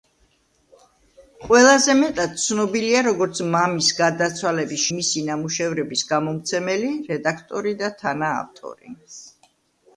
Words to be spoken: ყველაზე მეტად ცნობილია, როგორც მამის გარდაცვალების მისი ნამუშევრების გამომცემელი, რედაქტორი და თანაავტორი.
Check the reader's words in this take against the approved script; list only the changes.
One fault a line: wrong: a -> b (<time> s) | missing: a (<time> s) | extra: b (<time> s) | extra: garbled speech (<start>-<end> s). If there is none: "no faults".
no faults